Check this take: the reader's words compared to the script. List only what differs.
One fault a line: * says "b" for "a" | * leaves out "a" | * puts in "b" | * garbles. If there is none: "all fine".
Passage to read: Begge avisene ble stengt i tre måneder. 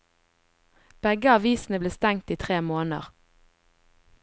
all fine